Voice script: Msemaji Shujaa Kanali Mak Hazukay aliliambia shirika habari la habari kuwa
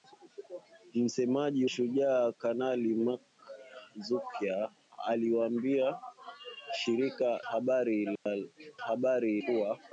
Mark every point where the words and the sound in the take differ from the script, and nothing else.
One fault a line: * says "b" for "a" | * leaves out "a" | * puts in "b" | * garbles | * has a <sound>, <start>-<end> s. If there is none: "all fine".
* has a dropout, 8.2-8.3 s